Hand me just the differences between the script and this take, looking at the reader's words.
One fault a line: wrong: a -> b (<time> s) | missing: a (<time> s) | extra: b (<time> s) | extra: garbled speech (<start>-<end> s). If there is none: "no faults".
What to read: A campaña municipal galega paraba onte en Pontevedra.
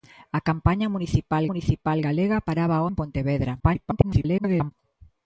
extra: municipal (1.5 s)
missing: onte (2.8 s)
extra: garbled speech (3.6-4.7 s)